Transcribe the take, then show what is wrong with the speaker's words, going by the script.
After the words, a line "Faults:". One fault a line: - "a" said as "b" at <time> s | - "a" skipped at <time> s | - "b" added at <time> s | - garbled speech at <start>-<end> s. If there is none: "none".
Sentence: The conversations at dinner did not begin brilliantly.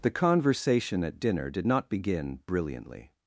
The conversation at dinner did not begin brilliantly.
Faults:
- "conversations" said as "conversation" at 0.1 s